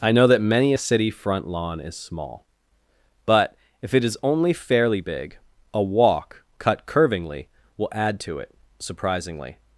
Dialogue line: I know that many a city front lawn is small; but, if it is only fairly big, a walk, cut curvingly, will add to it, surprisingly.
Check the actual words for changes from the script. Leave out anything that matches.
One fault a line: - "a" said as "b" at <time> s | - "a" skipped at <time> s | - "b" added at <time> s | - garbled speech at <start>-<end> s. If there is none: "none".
none